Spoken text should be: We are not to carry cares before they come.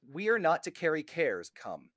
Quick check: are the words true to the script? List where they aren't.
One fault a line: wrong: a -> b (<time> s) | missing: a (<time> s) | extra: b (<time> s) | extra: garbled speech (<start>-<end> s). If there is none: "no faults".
missing: before they (1.5 s)